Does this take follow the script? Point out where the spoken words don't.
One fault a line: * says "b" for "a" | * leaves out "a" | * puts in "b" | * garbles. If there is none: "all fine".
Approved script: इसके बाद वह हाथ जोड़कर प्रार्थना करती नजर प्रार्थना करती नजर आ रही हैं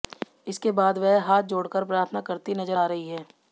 * leaves out "प्रार्थना करती नजर"